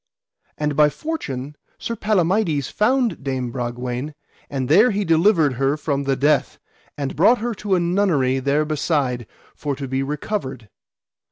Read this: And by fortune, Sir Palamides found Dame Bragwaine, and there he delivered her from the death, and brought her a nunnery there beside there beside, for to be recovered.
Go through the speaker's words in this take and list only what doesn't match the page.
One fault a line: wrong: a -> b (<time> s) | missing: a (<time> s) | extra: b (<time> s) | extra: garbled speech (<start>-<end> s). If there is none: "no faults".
extra: to (7.6 s)
missing: there beside (9.3 s)